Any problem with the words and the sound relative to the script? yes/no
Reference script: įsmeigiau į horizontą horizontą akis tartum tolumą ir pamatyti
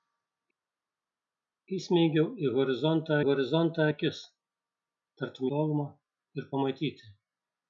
no